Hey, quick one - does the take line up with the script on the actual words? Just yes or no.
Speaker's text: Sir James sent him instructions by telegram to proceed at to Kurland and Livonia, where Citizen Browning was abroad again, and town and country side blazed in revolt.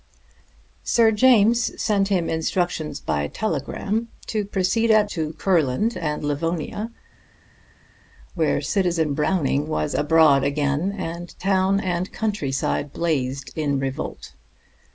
yes